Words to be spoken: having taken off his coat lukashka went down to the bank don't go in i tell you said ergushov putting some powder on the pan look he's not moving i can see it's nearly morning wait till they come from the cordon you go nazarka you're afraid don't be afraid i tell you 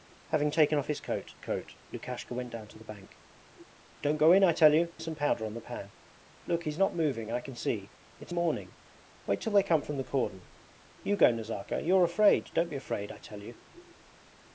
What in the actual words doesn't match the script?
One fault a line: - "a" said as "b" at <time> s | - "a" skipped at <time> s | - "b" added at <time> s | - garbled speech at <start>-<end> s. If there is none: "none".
- "coat" added at 1.4 s
- "said ergushov putting" skipped at 4.9 s
- "nearly" skipped at 8.3 s